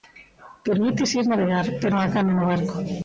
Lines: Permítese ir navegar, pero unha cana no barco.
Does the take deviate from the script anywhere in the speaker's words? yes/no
no